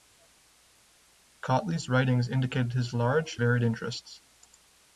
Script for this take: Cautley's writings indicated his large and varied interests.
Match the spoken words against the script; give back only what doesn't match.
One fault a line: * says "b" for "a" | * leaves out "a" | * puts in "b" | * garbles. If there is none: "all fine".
* leaves out "and"